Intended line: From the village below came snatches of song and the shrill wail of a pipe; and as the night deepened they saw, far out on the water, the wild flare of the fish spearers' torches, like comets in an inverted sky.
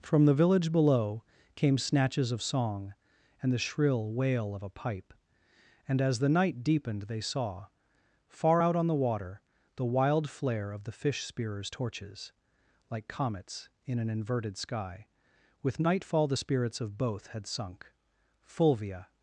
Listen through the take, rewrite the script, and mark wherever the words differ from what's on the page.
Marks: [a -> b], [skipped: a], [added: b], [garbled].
From the village below came snatches of song and the shrill wail of a pipe; and as the night deepened they saw, far out on the water, the wild flare of the fish spearers' torches, like comets in an inverted sky. [added: With nightfall the spirits of both had sunk Fulvia]